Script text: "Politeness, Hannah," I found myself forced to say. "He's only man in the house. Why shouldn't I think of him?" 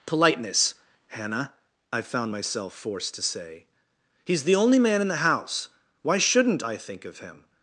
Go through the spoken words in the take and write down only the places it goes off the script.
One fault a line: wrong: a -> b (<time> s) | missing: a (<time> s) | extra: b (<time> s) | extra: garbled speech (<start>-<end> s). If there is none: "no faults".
extra: the (4.4 s)